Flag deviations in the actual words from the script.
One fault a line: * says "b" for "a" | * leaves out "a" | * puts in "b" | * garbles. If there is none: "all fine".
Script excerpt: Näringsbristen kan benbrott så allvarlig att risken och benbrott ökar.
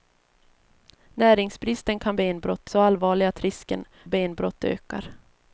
all fine